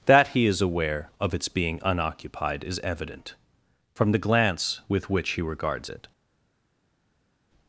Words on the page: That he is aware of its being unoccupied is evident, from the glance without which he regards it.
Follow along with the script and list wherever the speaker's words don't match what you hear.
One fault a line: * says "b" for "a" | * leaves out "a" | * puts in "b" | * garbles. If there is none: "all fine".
* says "with" for "without"